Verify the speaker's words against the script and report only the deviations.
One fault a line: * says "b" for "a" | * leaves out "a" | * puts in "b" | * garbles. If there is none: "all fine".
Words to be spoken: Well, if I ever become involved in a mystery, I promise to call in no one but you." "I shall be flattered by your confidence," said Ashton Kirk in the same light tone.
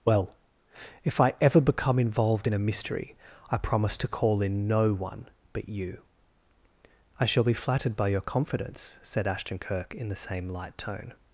all fine